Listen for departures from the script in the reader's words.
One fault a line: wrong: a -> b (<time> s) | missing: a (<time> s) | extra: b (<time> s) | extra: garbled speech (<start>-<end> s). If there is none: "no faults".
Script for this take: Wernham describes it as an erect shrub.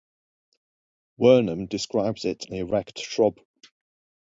missing: as (2.5 s)